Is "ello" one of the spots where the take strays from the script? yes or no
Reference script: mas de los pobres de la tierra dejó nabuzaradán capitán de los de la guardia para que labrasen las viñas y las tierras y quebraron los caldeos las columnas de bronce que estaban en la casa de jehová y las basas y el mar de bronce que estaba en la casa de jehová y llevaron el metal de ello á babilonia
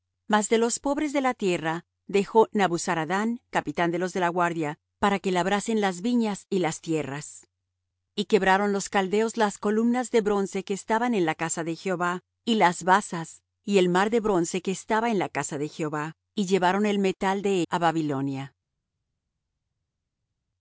yes